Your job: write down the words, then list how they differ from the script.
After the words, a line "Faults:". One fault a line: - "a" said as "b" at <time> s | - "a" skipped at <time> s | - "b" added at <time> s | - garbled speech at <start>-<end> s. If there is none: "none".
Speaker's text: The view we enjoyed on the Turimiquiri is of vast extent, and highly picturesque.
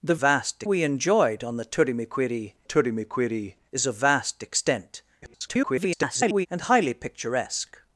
The vast we enjoyed on the Turimiquiri Turimiquiri is of vast extent, [garbled] and highly picturesque.
Faults:
- "view" said as "vast" at 0.1 s
- "Turimiquiri" added at 2.6 s
- garbled speech at 5.2-6.5 s